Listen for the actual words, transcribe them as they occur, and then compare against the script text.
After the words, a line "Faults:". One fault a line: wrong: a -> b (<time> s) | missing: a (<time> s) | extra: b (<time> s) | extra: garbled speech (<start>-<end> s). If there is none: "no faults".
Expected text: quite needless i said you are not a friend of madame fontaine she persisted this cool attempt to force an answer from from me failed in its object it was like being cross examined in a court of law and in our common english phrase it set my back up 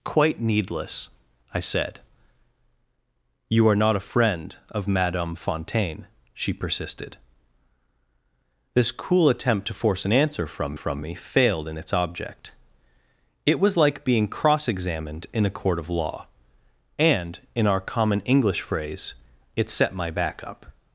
quite needless i said you are not a friend of madame fontaine she persisted this cool attempt to force an answer from from me failed in its object it was like being cross examined in a court of law and in our common english phrase it set my back up
Faults:
no faults